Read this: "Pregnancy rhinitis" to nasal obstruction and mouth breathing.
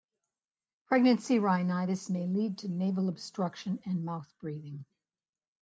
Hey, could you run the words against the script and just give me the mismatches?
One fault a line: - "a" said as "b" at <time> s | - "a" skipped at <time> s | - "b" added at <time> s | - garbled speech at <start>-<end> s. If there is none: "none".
- "may lead" added at 2.1 s